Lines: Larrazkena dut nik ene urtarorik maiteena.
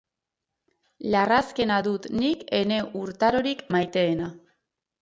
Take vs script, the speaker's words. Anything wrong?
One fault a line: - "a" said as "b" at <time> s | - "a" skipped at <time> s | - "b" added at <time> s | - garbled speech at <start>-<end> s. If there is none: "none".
none